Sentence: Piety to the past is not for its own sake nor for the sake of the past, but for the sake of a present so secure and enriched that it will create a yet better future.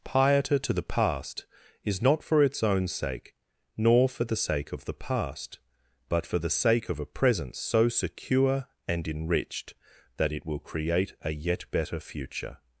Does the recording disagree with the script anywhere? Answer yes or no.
no